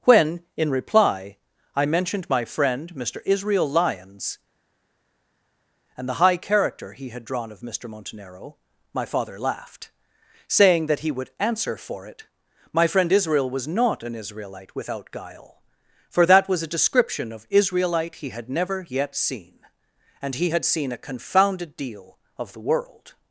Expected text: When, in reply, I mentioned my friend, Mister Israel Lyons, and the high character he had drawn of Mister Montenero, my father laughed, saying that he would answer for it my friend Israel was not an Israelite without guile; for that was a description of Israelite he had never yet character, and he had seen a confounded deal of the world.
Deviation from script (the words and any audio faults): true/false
true